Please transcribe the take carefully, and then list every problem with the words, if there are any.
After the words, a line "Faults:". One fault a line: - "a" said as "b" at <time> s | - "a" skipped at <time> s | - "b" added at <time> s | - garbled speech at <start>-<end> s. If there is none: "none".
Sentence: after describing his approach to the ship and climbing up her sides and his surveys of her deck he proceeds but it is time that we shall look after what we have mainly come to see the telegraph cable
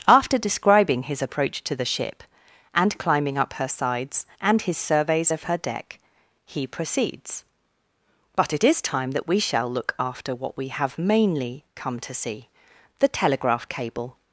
after describing his approach to the ship and climbing up her sides and his surveys of her deck he proceeds but it is time that we shall look after what we have mainly come to see the telegraph cable
Faults:
none